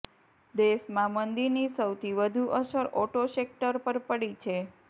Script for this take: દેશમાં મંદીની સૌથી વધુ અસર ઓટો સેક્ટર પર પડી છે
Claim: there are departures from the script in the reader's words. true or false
false